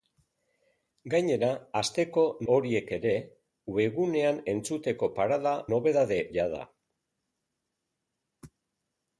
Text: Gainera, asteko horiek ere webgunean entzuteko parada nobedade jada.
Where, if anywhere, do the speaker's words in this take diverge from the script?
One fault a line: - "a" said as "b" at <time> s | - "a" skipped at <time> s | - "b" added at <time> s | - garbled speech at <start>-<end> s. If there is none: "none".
none